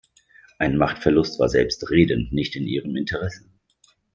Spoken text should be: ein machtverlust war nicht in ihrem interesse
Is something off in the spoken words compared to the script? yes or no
yes